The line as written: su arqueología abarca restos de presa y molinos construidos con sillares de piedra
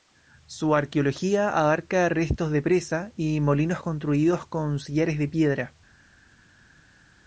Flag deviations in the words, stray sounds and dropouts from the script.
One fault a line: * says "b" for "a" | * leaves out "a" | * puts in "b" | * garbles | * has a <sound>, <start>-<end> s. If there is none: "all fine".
all fine